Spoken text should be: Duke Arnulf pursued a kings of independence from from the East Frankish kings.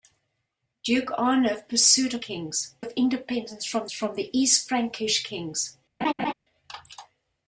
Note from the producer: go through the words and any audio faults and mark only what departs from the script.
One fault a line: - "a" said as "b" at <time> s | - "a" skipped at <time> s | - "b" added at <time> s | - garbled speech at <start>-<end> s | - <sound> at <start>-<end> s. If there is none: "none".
- laugh at 6.0-6.3 s